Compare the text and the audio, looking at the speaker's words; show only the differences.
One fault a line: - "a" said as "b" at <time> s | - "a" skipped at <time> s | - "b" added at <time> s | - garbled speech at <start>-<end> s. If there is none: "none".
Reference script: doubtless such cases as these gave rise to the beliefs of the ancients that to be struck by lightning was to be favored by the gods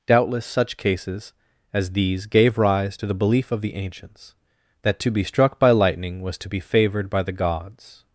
- "beliefs" said as "belief" at 3.1 s